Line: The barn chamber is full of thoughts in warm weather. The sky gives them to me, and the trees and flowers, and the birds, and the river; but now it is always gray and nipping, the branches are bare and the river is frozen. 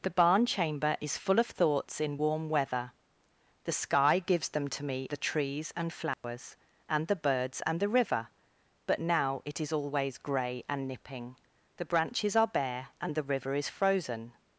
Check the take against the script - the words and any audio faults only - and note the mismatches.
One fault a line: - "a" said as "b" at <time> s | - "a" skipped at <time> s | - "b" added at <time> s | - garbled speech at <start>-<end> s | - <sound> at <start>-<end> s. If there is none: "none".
- "and" skipped at 5.1 s
- dropout at 6.1-6.2 s